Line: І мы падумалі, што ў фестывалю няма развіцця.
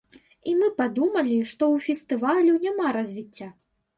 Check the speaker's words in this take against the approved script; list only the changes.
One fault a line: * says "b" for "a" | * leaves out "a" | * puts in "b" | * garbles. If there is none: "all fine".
all fine